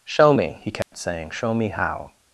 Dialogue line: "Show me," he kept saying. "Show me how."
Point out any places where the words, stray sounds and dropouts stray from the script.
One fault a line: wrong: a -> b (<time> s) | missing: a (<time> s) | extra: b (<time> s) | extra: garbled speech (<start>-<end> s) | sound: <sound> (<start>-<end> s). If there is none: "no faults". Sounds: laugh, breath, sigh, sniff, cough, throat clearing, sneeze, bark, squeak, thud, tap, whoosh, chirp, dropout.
sound: dropout (0.8-0.9 s)